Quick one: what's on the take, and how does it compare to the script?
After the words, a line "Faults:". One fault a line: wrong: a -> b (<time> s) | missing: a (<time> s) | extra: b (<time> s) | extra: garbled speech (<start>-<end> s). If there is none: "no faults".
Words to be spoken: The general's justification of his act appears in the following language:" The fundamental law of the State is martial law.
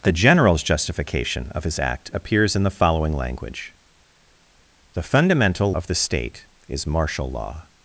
The general's justification of his act appears in the following language:" The fundamental of the State is martial law.
Faults:
missing: law (5.8 s)